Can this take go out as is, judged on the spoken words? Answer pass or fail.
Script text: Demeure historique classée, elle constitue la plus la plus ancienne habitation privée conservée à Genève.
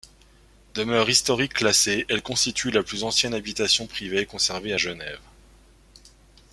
fail